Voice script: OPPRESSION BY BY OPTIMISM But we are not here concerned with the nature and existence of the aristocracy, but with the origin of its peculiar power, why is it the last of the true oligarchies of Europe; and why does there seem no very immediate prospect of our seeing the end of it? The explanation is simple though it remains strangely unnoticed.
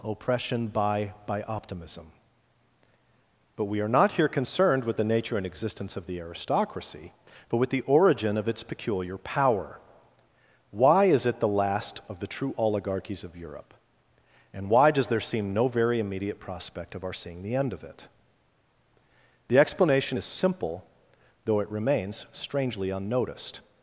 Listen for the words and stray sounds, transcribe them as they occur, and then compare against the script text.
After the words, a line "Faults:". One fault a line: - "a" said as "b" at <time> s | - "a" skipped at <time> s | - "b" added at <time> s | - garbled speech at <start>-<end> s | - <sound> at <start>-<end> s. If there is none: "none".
OPPRESSION BY BY OPTIMISM But we are not here concerned with the nature and existence of the aristocracy, but with the origin of its peculiar power, why is it the last of the true oligarchies of Europe; and why does there seem no very immediate prospect of our seeing the end of it? The explanation is simple though it remains strangely unnoticed.
Faults:
none